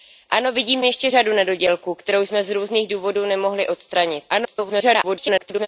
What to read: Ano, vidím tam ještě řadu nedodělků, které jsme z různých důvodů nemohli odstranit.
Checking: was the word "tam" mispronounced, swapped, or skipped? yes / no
yes